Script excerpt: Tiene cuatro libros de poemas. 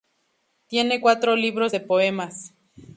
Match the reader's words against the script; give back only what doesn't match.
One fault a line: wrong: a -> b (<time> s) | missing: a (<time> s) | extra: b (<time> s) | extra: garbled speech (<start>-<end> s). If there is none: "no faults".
no faults